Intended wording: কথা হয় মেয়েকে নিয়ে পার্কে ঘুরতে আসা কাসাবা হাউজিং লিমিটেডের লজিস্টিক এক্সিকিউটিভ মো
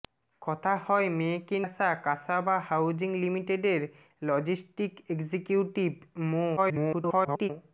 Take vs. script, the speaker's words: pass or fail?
fail